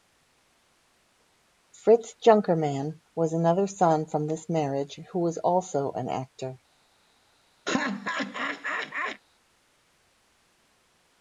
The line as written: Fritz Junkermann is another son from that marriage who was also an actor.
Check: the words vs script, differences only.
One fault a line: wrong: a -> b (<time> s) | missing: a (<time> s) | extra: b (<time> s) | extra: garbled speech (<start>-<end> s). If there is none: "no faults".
wrong: is -> was (3.1 s)
wrong: that -> this (4.3 s)